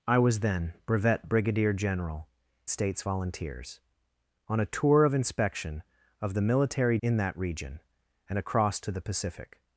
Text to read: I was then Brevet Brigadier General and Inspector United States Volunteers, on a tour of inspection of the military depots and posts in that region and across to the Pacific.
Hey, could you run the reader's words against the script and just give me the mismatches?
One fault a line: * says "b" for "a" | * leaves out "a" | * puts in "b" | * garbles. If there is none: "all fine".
* leaves out "and Inspector United"
* leaves out "depots and posts"